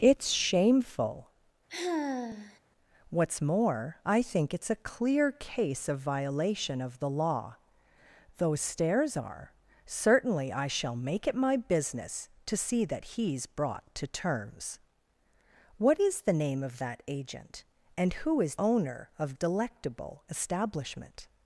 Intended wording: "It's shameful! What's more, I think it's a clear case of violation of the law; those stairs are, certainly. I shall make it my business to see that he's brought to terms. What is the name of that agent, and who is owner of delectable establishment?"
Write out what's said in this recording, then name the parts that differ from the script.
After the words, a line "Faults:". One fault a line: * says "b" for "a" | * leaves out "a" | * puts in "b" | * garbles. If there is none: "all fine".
"It's shameful! What's more, I think it's a clear case of violation of the law; those stairs are, certainly. I shall make it my business to see that he's brought to terms. What is the name of that agent, and who is owner of delectable establishment?"
Faults:
all fine